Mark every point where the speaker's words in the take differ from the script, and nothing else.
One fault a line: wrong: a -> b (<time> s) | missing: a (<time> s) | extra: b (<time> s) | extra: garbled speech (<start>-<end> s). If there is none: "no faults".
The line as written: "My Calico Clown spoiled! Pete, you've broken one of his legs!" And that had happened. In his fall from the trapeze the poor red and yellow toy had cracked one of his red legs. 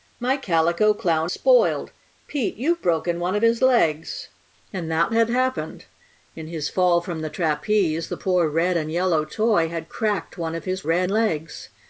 no faults